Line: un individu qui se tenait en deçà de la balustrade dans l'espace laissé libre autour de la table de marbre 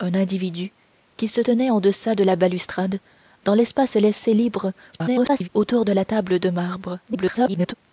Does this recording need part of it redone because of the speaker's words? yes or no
yes